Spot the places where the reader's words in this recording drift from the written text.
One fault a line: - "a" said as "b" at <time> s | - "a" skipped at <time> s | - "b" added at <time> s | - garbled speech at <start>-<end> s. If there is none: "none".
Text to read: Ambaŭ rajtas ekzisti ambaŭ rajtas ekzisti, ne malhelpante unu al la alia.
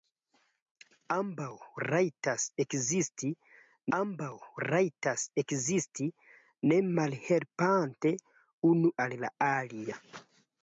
none